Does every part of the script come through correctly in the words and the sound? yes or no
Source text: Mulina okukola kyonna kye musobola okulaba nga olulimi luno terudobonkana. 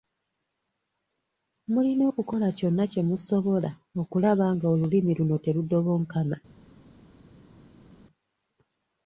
yes